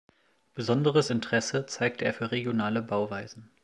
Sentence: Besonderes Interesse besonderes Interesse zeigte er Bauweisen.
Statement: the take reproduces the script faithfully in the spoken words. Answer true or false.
false